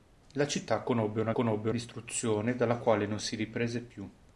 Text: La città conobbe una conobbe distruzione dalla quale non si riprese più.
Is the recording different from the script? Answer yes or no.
no